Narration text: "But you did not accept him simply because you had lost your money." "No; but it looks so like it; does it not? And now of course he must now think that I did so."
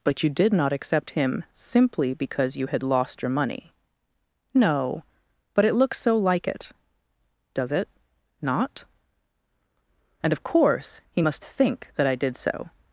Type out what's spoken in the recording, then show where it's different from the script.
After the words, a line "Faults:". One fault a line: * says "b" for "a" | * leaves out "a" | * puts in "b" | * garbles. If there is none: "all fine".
"But you did not accept him simply because you had lost your money." "No; but it looks so like it; does it not? And of course he must think that I did so."
Faults:
* leaves out "now"
* leaves out "now"